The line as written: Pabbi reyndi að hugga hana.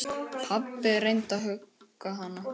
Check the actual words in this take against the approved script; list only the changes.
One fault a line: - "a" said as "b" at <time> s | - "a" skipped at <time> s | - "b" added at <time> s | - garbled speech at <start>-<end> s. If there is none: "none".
none